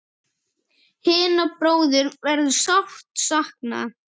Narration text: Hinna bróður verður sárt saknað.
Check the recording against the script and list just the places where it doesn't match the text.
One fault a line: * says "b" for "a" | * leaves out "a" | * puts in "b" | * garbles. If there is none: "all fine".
all fine